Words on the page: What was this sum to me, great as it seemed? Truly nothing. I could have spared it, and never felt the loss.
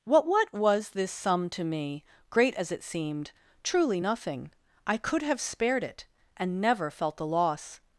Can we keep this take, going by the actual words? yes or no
no